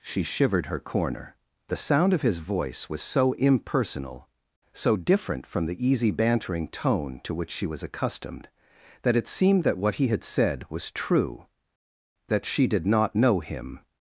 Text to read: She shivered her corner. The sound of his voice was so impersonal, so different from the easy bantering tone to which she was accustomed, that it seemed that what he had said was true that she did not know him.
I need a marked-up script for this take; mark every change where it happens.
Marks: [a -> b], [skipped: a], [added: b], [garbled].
She shivered her corner. The sound of his voice was so impersonal, so different from the easy bantering tone to which she was accustomed, that it seemed that what he had said was true that she did not know him.